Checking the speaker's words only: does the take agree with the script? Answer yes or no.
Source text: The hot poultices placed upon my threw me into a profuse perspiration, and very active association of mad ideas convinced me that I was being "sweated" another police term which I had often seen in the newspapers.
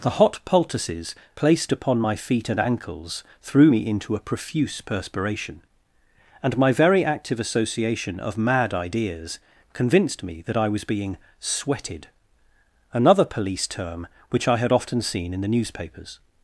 no